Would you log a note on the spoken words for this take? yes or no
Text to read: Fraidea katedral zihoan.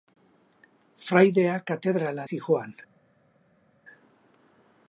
no